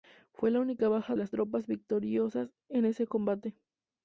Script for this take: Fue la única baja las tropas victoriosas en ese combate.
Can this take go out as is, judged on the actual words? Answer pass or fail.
pass